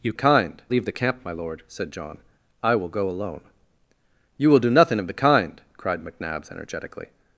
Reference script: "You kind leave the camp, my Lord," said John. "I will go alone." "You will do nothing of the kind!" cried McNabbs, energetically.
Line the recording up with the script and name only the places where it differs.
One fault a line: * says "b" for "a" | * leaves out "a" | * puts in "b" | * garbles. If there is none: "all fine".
all fine